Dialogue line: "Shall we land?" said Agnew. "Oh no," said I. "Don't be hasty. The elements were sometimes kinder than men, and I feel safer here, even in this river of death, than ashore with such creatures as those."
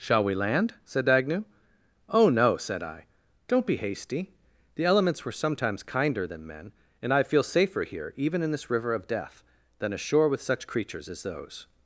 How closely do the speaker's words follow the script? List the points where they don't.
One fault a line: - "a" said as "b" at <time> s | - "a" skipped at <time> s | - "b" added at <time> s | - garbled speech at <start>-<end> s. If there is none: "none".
none